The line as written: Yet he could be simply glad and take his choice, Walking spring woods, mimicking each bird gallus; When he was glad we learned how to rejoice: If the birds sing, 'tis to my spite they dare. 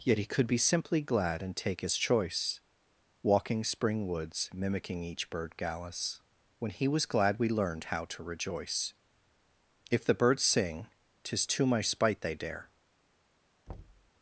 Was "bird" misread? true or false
false